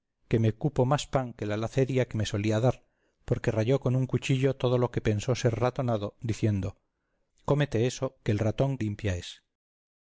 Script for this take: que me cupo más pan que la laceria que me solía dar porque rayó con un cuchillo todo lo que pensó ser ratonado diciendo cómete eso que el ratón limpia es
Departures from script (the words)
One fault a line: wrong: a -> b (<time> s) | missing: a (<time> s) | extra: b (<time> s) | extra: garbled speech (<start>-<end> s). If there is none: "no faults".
no faults